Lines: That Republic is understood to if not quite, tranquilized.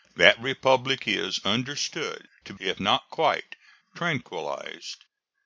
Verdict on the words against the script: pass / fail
pass